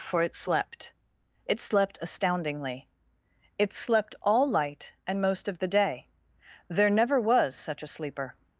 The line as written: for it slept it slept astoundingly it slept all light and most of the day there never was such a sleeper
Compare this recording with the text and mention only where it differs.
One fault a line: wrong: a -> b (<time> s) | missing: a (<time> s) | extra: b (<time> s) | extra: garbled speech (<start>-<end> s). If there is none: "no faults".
no faults